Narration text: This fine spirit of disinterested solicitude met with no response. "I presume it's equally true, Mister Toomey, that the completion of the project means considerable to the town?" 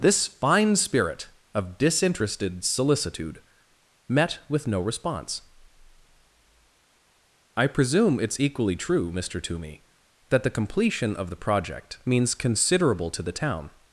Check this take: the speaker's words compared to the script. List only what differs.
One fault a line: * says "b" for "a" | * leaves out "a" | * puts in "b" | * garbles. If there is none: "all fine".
all fine